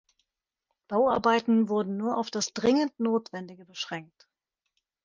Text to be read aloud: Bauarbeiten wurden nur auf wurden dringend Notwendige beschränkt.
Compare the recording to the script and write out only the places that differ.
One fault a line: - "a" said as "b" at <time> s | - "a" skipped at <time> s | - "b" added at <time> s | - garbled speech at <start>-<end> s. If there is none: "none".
- "wurden" said as "das" at 2.3 s